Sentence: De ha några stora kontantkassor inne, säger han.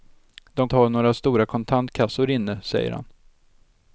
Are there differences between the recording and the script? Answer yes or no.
no